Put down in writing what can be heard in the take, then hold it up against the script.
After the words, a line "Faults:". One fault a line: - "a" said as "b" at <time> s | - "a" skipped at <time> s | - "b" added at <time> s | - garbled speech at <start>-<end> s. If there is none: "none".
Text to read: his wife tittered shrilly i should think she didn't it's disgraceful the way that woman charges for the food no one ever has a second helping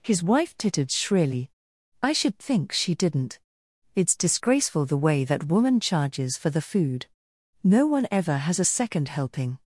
his wife tittered shrilly i should think she didn't it's disgraceful the way that woman charges for the food no one ever has a second helping
Faults:
none